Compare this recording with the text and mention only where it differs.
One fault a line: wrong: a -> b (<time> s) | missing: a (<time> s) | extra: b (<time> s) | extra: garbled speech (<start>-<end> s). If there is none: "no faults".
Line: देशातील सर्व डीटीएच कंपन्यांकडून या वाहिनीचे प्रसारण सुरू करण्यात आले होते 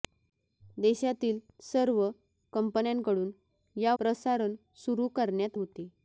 missing: डीटीएच (2.1 s)
missing: वाहिनीचे (3.9 s)
missing: आले (5.6 s)